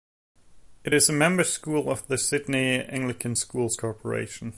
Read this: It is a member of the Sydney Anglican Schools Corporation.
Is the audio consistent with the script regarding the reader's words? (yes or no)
no